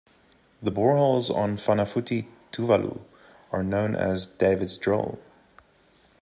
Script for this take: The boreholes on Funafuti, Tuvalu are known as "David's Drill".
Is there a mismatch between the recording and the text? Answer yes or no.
no